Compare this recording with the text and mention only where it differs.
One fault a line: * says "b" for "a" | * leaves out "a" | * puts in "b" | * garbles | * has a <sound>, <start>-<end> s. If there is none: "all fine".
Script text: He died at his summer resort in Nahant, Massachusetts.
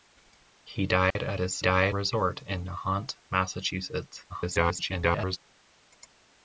* has a dropout, 1.1-1.2 s
* says "died" for "summer"
* garbles